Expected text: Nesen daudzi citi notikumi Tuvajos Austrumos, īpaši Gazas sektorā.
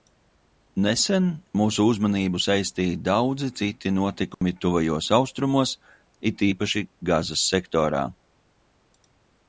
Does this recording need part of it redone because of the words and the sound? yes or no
yes